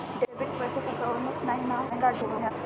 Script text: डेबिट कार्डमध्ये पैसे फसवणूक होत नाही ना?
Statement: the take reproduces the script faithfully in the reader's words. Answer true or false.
false